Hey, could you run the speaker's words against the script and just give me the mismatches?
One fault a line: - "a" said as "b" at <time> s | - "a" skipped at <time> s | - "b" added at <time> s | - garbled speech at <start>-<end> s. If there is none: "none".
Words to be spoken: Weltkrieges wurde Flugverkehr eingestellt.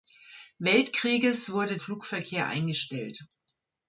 none